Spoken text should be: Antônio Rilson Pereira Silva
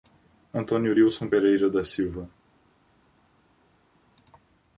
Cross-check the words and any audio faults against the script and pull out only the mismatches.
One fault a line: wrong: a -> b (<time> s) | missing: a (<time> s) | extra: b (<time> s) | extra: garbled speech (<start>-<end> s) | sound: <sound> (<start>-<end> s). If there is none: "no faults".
extra: da (1.7 s)